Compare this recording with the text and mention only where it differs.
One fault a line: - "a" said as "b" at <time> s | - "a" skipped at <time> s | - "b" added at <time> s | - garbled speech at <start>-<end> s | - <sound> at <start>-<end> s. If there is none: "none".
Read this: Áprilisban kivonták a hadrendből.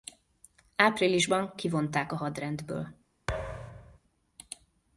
- thud at 3.3-4.0 s